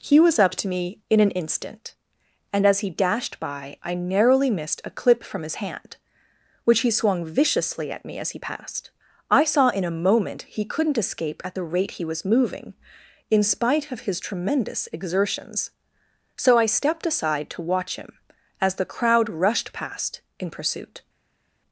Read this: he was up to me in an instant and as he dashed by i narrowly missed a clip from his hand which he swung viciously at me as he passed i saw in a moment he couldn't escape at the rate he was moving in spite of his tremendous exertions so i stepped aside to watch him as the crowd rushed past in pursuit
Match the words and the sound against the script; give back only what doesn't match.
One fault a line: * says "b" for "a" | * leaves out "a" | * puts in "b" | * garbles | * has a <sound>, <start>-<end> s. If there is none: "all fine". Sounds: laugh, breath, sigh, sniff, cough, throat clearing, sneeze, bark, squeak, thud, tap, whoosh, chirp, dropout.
all fine